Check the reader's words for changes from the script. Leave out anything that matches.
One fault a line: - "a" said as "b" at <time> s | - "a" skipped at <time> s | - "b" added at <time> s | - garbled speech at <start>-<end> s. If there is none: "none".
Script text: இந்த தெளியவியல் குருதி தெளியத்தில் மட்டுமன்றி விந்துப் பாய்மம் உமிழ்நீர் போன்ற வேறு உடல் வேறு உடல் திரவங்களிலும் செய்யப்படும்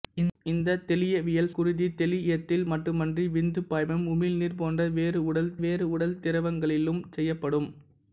none